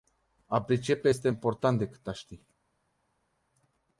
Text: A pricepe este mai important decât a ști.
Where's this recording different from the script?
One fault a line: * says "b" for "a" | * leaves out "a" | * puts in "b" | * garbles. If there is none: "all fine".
* leaves out "mai"